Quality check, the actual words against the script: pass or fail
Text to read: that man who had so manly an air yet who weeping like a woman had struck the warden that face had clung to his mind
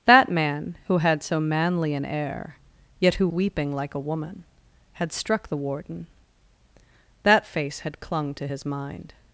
pass